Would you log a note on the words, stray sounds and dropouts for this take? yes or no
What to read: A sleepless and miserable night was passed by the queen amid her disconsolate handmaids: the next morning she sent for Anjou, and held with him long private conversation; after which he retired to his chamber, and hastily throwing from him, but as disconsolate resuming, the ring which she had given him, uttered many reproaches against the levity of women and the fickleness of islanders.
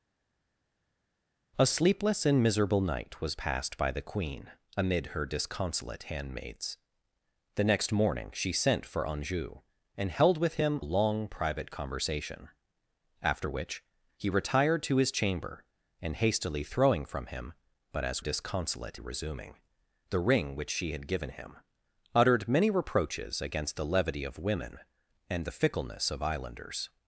no